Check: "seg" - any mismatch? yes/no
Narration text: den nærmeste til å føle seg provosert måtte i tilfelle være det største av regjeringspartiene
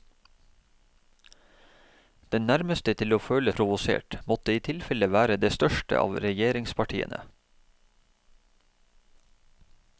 yes